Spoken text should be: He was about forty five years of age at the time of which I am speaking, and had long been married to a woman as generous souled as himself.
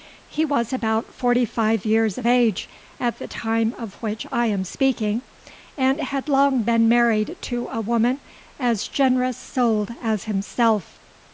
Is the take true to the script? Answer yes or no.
yes